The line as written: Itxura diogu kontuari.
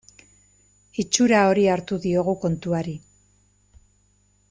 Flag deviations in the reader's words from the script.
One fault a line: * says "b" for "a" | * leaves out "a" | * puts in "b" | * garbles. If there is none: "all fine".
* puts in "hori hartu"